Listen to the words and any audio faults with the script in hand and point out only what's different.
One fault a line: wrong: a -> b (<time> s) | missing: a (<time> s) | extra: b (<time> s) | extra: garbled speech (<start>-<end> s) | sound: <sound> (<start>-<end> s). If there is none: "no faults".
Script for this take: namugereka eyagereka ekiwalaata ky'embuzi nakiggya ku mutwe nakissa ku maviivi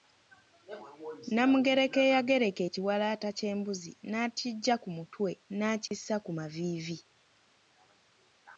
sound: dropout (5.9-5.9 s)